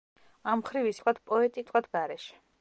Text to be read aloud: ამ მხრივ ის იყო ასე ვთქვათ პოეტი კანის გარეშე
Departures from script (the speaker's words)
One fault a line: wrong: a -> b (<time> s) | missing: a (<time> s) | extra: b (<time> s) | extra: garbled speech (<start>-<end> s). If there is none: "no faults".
missing: იყო ასე (1.0 s)
wrong: კანის -> ვთქვათ (1.7 s)